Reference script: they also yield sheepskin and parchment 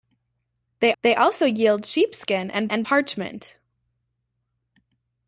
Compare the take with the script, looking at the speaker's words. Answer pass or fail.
fail